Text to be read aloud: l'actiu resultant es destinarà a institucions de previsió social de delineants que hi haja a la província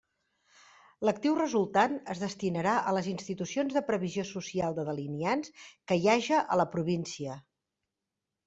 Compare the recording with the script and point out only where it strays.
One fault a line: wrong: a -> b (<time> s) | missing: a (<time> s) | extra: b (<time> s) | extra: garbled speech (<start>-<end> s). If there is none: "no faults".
extra: les (3.0 s)